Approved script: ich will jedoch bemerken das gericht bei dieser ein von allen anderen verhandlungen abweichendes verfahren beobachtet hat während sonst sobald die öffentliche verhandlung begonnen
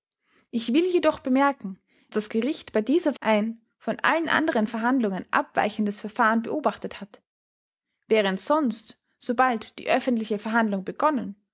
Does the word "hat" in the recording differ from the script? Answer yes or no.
no